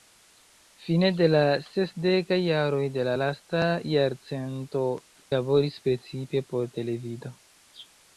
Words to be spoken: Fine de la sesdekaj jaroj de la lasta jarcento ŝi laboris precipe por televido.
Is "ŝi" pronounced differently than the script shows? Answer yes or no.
yes